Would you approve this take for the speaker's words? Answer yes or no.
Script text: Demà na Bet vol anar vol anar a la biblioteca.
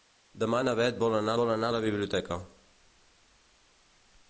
yes